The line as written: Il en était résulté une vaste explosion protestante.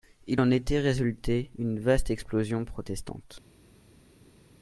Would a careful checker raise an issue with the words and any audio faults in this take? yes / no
no